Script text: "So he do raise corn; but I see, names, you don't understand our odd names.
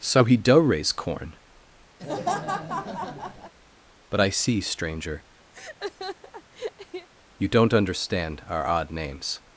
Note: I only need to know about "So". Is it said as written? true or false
true